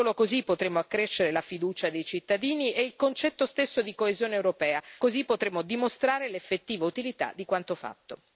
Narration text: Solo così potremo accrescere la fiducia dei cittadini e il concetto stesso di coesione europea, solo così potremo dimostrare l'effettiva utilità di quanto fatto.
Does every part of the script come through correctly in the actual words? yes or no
no